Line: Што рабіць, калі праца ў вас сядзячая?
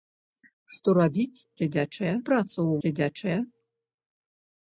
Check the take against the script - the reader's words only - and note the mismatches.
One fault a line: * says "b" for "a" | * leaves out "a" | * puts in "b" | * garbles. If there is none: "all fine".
* says "сядзячая" for "калі"
* leaves out "вас"